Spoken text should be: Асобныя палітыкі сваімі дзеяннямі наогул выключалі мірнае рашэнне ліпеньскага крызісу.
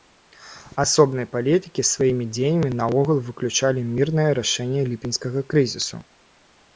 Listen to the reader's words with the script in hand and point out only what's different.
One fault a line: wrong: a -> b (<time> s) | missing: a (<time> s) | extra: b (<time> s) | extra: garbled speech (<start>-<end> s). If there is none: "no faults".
no faults